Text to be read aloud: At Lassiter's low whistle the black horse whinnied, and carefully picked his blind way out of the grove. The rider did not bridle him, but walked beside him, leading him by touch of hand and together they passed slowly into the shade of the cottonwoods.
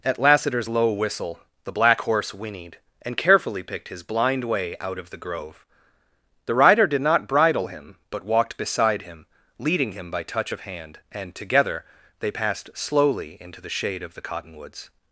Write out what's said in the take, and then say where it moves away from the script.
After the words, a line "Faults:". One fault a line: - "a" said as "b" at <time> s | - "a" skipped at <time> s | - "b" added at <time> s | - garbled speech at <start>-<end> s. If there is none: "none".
At Lassiter's low whistle the black horse whinnied, and carefully picked his blind way out of the grove. The rider did not bridle him, but walked beside him, leading him by touch of hand and together they passed slowly into the shade of the cottonwoods.
Faults:
none